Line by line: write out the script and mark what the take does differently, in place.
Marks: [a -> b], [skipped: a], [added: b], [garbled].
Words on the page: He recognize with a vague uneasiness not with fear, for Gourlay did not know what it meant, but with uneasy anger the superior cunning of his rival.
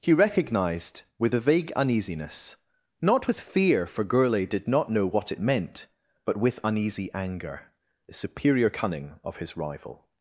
He [recognize -> recognized] with a vague uneasiness not with fear, for Gourlay did not know what it meant, but with uneasy anger the superior cunning of his rival.